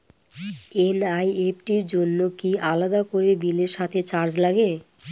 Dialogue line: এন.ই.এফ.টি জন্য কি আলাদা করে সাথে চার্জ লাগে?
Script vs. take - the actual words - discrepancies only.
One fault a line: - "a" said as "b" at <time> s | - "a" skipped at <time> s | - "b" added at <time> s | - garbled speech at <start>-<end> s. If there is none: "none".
- "র" added at 1.8 s
- "বিলের" added at 3.4 s